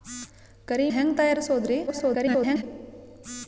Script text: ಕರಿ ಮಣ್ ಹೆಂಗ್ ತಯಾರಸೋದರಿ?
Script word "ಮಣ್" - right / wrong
wrong